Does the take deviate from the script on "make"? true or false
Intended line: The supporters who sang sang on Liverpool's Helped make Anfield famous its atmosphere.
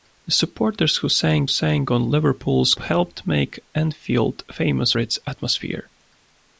false